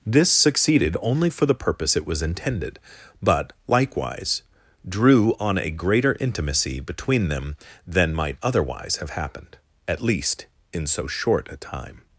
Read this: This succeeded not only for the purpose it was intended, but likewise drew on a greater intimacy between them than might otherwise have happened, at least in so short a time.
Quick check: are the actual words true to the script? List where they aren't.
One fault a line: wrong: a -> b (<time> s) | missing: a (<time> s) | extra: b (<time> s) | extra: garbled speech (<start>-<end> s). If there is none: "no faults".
missing: not (1.0 s)